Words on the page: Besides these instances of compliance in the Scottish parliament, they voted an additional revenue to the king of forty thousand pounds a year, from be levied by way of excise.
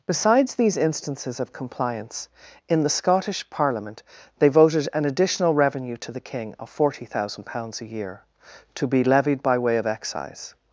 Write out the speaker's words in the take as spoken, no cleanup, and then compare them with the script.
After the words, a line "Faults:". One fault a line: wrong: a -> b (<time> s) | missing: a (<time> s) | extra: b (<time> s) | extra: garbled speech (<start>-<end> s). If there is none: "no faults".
Besides these instances of compliance in the Scottish parliament, they voted an additional revenue to the king of forty thousand pounds a year, to be levied by way of excise.
Faults:
wrong: from -> to (8.7 s)